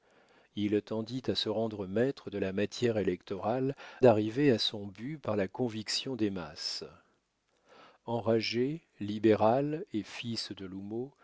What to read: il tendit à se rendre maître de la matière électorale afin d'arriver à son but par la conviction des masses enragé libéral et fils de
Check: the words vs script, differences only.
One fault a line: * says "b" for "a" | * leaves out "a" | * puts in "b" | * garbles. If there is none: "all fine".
* leaves out "afin"